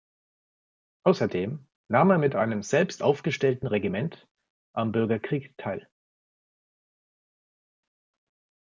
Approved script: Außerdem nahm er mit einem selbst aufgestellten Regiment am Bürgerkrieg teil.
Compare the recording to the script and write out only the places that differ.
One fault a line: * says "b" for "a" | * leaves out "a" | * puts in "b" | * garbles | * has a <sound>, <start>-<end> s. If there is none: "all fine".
all fine